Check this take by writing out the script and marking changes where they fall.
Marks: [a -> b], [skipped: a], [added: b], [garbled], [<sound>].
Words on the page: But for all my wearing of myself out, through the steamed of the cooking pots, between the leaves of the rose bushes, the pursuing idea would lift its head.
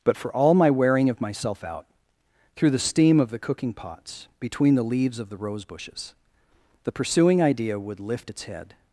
But for all my wearing of myself out, through the [steamed -> steam] of the cooking pots, between the leaves of the rose bushes, the pursuing idea would lift its head.